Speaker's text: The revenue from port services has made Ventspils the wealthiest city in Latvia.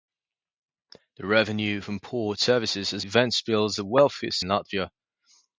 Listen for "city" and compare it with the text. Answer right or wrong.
wrong